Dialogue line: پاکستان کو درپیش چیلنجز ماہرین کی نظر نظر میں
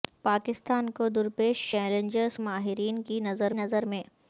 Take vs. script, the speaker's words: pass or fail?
pass